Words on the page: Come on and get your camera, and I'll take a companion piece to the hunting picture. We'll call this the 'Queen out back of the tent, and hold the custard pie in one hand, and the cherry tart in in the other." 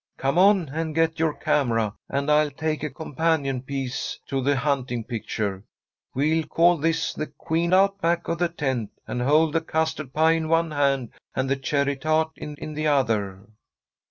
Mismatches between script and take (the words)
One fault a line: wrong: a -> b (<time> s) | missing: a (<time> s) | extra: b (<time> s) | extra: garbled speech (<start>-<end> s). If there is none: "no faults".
no faults